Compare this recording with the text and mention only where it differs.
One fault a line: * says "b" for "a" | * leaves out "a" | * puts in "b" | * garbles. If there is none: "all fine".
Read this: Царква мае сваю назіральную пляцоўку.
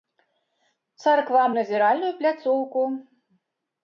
* leaves out "мае сваю"